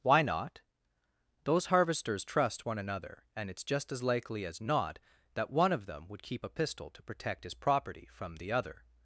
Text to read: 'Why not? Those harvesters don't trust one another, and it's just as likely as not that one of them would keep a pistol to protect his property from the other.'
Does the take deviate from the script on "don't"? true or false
true